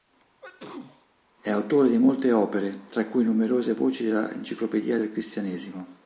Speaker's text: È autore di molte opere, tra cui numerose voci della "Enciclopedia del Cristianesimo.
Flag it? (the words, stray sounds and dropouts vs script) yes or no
yes